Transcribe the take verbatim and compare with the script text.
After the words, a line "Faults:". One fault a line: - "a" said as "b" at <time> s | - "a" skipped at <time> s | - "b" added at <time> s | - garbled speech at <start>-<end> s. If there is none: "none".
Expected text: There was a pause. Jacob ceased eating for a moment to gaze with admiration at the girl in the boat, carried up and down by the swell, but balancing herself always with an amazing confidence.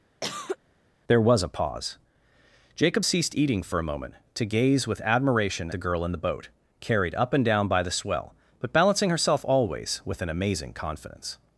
There was a pause. Jacob ceased eating for a moment to gaze with admiration the girl in the boat, carried up and down by the swell, but balancing herself always with an amazing confidence.
Faults:
- "at" skipped at 5.7 s